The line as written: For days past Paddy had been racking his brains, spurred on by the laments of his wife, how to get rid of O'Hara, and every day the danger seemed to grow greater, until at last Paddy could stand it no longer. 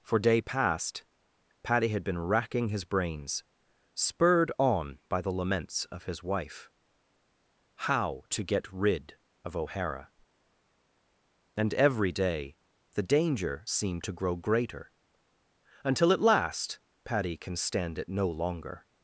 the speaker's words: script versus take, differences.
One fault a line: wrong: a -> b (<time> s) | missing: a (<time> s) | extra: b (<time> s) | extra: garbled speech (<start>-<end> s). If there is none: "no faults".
wrong: days -> day (0.2 s)
wrong: could -> can (17.4 s)